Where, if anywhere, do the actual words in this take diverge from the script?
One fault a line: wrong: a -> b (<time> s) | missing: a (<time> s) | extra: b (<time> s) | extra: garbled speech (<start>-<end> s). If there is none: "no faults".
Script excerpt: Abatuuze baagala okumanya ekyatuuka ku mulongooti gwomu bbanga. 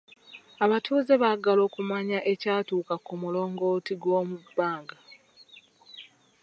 no faults